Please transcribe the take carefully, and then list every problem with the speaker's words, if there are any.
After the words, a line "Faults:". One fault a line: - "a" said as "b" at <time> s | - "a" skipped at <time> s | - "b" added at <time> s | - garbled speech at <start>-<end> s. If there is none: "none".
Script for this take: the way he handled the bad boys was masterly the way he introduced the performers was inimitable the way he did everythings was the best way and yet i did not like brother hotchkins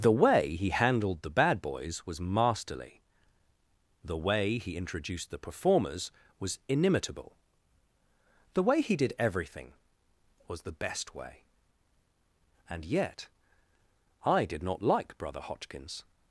the way he handled the bad boys was masterly the way he introduced the performers was inimitable the way he did everything was the best way and yet i did not like brother hotchkins
Faults:
- "everythings" said as "everything" at 9.2 s